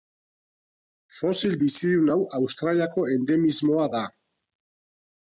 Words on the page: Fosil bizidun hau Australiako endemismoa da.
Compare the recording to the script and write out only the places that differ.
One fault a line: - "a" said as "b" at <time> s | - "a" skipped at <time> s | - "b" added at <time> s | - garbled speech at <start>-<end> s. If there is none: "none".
none